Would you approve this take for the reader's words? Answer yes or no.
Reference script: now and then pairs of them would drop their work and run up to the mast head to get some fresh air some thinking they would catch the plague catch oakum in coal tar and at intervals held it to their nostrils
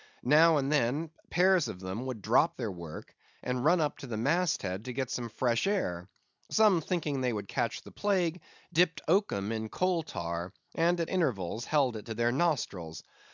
no